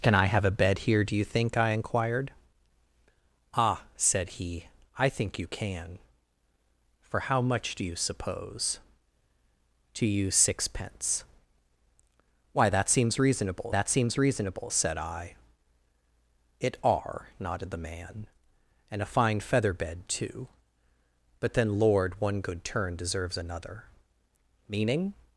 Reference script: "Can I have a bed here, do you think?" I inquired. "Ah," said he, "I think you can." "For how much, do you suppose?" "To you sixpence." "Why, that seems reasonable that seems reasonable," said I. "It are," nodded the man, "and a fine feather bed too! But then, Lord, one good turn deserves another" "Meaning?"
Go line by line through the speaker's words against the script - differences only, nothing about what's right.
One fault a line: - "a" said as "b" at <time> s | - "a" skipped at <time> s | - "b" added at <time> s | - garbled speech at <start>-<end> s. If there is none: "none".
none